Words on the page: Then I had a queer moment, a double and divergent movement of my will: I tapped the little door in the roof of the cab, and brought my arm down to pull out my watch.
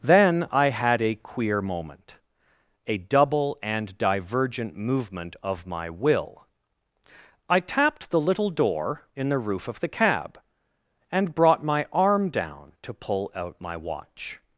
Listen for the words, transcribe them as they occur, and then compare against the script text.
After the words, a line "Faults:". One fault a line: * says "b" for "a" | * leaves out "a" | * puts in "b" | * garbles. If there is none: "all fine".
Then I had a queer moment, a double and divergent movement of my will: I tapped the little door in the roof of the cab, and brought my arm down to pull out my watch.
Faults:
all fine